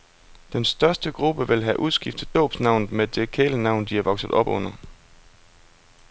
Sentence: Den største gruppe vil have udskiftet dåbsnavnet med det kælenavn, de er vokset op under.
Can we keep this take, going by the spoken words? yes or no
yes